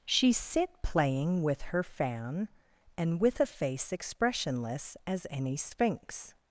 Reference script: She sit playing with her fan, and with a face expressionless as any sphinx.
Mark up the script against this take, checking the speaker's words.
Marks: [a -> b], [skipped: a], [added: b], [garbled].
She sit playing with her fan, and with a face expressionless as any sphinx.